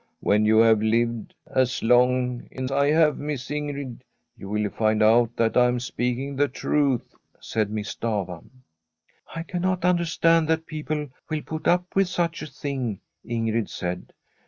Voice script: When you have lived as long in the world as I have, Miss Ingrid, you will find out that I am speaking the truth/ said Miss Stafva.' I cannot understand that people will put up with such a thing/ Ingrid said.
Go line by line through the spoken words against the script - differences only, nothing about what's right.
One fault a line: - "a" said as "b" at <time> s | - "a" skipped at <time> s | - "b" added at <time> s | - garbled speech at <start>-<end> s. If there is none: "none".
- "the world as" skipped at 2.6 s